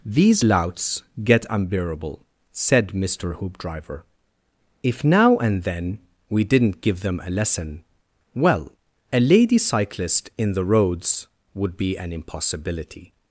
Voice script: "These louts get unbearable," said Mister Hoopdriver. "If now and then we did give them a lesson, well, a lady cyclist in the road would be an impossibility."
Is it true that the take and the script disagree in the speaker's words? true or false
true